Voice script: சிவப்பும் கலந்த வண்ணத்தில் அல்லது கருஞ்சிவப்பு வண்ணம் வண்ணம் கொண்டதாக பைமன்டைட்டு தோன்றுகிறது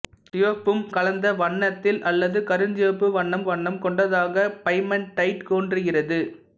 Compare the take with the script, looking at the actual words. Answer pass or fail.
pass